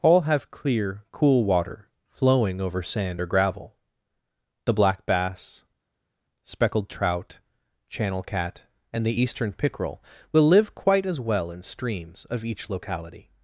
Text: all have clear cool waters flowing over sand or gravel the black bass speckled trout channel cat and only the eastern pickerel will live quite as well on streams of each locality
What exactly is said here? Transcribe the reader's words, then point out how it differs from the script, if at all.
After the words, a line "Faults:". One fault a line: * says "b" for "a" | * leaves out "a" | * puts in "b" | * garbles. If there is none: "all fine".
all have clear cool water flowing over sand or gravel the black bass speckled trout channel cat and the eastern pickerel will live quite as well in streams of each locality
Faults:
* says "water" for "waters"
* leaves out "only"
* says "in" for "on"